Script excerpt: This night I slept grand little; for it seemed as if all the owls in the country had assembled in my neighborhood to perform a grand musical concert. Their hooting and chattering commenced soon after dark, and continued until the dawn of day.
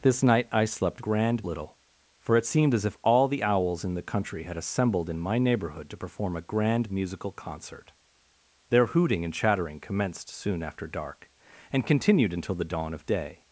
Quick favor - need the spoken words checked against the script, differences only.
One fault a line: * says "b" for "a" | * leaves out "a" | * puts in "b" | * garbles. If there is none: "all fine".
all fine